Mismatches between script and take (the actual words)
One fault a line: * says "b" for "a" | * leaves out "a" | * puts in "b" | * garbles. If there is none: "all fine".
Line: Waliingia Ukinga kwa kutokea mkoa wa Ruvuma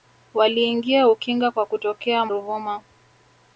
* leaves out "mkoa wa"